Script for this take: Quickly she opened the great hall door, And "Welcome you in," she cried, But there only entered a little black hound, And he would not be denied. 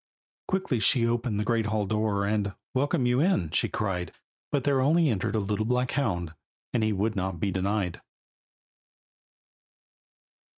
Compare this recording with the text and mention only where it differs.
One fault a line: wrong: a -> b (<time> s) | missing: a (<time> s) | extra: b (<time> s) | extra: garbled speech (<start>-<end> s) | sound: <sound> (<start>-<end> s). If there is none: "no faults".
no faults